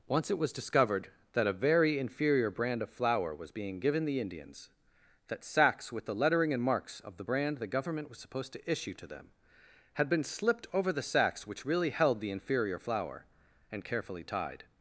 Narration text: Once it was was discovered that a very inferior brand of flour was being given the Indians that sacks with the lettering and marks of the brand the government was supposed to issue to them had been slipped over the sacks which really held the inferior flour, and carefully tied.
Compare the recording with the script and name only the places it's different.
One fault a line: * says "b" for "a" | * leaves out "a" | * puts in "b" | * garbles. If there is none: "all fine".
* leaves out "was"